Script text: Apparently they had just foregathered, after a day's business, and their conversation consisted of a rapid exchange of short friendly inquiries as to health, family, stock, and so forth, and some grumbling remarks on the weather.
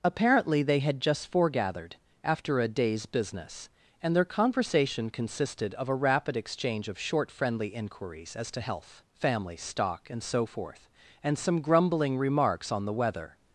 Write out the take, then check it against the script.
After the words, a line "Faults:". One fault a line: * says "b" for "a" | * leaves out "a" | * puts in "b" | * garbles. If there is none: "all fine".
Apparently they had just foregathered, after a day's business, and their conversation consisted of a rapid exchange of short friendly inquiries as to health, family, stock, and so forth, and some grumbling remarks on the weather.
Faults:
all fine